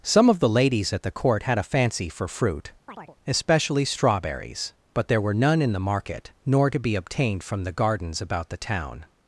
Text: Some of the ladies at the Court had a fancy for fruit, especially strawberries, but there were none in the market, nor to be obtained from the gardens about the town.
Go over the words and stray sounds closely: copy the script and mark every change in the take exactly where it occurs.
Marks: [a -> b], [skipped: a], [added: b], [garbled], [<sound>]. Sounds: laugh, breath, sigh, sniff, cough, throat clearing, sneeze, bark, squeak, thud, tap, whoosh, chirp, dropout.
Some of the ladies at the Court had a fancy for fruit, [chirp] especially strawberries, but there were none in the market, nor to be obtained from the gardens about the town.